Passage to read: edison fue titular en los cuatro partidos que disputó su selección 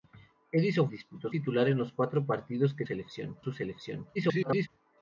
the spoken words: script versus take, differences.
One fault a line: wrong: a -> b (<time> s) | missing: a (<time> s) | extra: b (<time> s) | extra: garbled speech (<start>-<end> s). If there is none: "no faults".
wrong: fue -> disputó (0.9 s)
wrong: disputó -> selección (2.8 s)
extra: garbled speech (4.1-4.7 s)